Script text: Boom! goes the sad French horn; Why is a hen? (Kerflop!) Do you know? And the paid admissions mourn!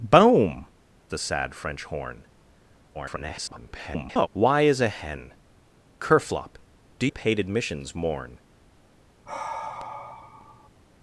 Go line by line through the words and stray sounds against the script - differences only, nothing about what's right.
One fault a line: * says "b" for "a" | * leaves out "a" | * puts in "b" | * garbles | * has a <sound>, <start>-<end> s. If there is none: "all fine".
* leaves out "goes"
* garbles
* leaves out "you know And"
* has a sigh, 9.3-10.7 s